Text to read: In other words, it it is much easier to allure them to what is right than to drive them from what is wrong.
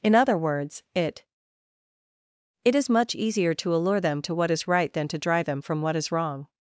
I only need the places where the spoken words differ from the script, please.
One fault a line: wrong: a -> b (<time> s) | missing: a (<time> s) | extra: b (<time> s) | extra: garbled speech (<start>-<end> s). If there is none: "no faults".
no faults